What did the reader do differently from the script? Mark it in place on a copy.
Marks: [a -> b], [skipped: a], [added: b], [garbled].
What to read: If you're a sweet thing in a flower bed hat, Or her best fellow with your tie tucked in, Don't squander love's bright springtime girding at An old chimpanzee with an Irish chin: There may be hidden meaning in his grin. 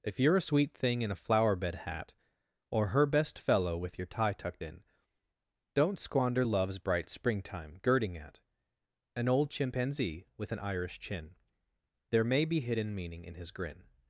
If you're a sweet thing in a flower bed hat, Or her best fellow with your tie tucked in, Don't squander love's bright springtime girding at An old chimpanzee with an Irish chin: There may be hidden meaning in his grin.